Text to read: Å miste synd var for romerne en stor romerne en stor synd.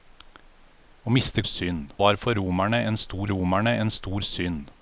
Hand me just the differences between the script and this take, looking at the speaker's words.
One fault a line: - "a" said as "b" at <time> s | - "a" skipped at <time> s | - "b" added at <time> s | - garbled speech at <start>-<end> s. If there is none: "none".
none